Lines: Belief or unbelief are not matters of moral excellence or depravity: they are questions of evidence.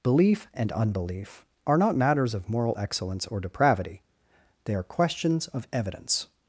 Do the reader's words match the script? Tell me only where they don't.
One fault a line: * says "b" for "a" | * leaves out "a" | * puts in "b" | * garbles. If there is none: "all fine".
* says "and" for "or"